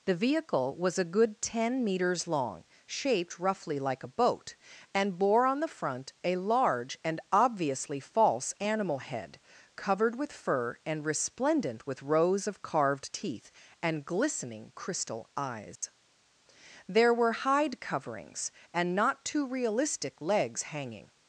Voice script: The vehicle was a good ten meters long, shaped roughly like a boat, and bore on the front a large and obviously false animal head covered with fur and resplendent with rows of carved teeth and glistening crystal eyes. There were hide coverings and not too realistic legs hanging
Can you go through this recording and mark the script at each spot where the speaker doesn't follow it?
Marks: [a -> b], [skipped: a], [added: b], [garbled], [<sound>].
The vehicle was a good ten meters long, shaped roughly like a boat, and bore on the front a large and obviously false animal head covered with fur and resplendent with rows of carved teeth and glistening crystal eyes. [dropout] There were hide coverings and not too realistic legs hanging